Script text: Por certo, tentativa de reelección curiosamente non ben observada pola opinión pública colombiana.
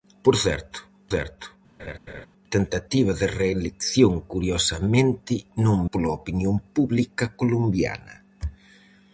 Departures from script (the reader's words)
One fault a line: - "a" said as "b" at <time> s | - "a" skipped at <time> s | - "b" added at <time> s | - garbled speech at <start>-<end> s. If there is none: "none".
- "certo" added at 1.1 s
- "ben observada" skipped at 5.8 s